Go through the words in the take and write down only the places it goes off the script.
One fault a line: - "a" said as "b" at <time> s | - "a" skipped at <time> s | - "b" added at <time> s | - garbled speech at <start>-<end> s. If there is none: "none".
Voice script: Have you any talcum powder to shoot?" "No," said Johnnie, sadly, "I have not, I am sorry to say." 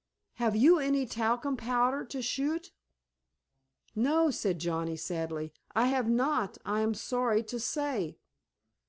none